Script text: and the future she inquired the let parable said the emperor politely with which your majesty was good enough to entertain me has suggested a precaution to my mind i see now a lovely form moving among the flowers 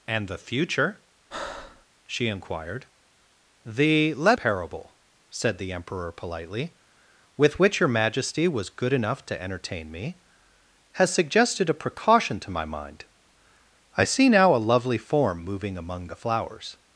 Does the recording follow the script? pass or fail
pass